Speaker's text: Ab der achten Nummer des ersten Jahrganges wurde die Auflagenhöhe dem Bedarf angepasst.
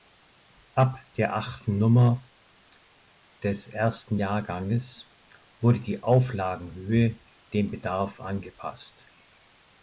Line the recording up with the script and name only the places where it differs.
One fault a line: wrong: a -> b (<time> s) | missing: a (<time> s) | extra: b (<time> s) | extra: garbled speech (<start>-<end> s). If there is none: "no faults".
no faults